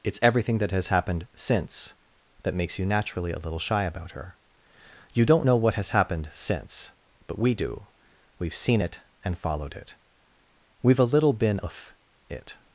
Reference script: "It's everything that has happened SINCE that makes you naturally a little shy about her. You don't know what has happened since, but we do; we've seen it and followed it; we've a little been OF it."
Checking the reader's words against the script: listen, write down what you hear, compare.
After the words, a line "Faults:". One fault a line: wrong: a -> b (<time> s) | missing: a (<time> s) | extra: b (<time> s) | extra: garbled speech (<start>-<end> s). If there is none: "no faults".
"It's everything that has happened SINCE that makes you naturally a little shy about her. You don't know what has happened since, but we do; we've seen it and followed it; we've a little been OF it."
Faults:
no faults